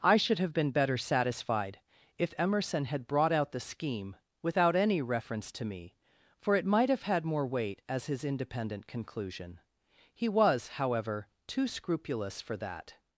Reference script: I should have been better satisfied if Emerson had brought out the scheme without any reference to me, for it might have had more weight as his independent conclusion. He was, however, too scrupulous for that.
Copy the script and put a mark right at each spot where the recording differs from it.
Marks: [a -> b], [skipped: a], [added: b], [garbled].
I should have been better satisfied if Emerson had brought out the scheme without any reference to me, for it might have had more weight as his independent conclusion. He was, however, too scrupulous for that.